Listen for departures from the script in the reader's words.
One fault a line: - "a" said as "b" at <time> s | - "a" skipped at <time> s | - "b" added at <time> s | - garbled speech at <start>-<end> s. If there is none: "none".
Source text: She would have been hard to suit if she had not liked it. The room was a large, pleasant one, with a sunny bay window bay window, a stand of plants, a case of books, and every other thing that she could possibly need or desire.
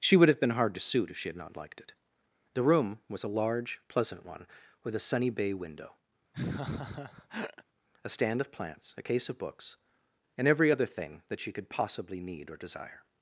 - "bay window" skipped at 5.9 s